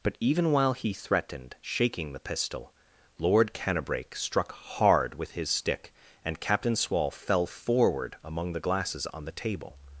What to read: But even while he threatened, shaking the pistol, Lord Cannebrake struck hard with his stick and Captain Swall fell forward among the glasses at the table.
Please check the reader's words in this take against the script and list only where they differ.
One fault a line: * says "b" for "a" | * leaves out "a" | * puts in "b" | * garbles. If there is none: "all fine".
* says "on" for "at"